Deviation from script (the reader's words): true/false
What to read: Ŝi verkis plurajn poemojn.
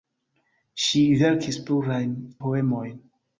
false